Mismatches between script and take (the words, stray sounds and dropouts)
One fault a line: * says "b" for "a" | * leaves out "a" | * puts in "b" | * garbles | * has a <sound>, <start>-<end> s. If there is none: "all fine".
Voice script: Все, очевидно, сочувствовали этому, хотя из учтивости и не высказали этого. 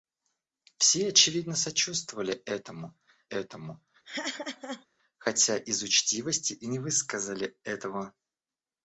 * puts in "этому"
* has a laugh, 4.0-4.9 s